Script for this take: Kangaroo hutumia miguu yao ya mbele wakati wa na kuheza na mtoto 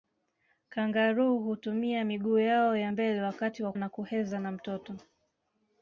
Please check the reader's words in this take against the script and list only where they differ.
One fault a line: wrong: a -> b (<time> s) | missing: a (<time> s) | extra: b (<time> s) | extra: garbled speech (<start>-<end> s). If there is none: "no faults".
no faults